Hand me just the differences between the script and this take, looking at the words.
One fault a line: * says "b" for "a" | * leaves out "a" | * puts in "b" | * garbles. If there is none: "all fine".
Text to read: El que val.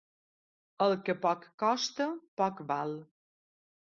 * puts in "poc costa poc"